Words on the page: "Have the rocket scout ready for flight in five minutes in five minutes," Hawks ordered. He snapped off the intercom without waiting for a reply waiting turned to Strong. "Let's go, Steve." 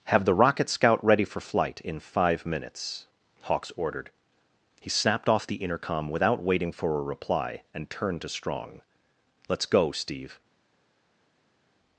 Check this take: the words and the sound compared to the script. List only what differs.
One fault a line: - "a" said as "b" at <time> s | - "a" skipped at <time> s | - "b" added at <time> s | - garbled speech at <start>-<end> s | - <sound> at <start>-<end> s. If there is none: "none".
- "in five minutes" skipped at 3.0 s
- "waiting" said as "and" at 7.7 s